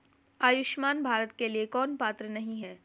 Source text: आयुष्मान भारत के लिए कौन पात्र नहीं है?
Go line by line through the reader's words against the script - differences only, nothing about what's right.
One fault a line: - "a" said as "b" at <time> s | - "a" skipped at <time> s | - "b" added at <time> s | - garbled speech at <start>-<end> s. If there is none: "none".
none